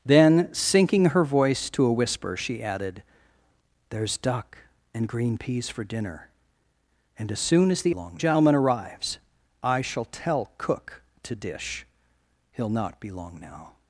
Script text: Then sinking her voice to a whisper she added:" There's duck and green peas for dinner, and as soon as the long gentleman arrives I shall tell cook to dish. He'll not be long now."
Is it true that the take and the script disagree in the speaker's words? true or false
false